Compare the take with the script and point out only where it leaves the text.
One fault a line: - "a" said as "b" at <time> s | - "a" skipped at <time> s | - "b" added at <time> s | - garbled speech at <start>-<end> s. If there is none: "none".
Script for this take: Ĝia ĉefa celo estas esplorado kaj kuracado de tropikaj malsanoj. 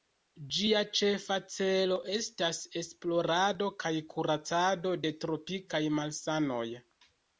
none